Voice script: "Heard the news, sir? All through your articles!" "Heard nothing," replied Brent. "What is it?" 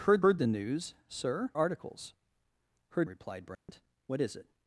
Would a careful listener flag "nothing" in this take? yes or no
yes